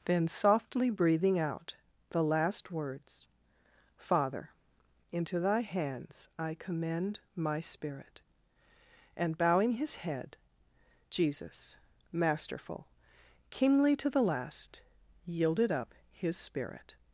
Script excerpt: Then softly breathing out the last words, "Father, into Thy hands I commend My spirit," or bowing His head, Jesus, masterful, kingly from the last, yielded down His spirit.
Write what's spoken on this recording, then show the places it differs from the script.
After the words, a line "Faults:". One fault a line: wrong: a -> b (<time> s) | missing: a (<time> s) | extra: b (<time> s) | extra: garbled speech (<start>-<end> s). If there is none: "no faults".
Then softly breathing out the last words, "Father, into Thy hands I commend My spirit," and bowing His head, Jesus, masterful, kingly to the last, yielded up His spirit.
Faults:
wrong: or -> and (9.2 s)
wrong: from -> to (14.0 s)
wrong: down -> up (15.7 s)